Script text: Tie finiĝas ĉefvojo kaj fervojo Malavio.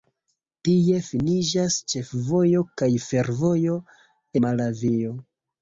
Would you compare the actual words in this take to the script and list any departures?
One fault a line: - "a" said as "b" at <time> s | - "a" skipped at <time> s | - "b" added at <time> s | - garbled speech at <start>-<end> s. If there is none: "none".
none